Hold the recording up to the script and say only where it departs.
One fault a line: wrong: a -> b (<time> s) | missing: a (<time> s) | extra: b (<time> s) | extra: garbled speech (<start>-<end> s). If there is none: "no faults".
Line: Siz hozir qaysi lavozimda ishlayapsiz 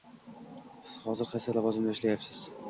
no faults